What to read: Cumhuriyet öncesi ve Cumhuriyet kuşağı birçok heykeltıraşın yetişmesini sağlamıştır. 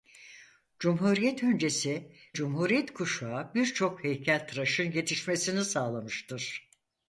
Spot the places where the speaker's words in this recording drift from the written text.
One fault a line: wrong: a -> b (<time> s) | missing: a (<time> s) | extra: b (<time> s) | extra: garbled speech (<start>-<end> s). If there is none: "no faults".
missing: ve (2.1 s)